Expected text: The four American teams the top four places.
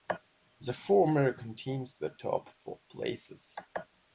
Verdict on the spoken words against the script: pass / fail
pass